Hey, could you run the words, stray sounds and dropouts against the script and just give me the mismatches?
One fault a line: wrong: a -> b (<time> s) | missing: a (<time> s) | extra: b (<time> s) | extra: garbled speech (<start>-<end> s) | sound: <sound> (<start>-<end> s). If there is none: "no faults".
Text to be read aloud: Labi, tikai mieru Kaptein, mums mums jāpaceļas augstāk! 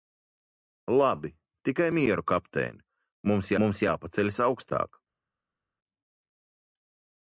no faults